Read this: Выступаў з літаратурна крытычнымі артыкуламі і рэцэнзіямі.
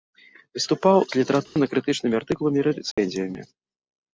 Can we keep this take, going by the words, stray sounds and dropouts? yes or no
no